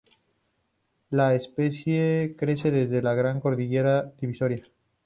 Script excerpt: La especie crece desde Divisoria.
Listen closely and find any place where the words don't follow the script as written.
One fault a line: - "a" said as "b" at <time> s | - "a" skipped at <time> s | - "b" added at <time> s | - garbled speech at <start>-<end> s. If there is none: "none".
- "la Gran Cordillera" added at 3.0 s